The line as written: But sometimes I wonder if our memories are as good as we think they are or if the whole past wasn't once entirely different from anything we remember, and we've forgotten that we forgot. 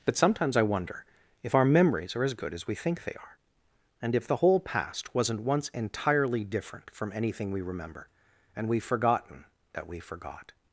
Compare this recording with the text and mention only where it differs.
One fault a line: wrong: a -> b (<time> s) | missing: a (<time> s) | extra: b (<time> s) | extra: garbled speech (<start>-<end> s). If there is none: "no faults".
wrong: or -> and (4.0 s)